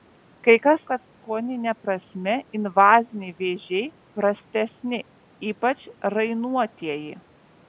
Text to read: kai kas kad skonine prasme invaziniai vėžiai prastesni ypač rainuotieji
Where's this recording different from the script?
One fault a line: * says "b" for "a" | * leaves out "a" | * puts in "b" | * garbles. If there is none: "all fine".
all fine